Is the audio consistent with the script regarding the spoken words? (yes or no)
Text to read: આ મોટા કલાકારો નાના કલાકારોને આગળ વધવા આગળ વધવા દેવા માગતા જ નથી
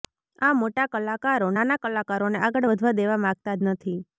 no